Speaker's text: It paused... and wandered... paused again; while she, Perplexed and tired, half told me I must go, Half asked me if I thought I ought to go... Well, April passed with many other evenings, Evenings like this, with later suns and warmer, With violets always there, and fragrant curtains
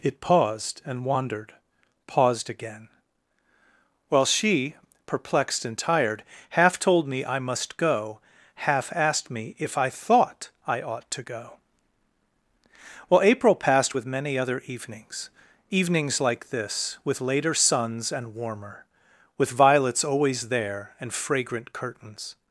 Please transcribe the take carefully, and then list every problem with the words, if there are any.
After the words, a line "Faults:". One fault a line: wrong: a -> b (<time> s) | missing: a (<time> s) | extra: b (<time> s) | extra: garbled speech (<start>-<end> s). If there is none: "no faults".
It paused... and wandered... paused again; while she, Perplexed and tired, half told me I must go, Half asked me if I thought I ought to go... Well, April passed with many other evenings, Evenings like this, with later suns and warmer, With violets always there, and fragrant curtains
Faults:
no faults